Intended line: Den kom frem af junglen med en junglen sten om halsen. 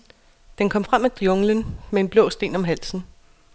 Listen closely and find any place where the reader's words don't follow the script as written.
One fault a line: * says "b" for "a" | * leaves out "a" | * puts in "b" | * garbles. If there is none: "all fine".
* says "blå" for "junglen"